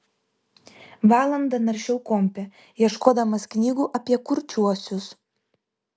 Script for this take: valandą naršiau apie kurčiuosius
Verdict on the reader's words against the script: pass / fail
fail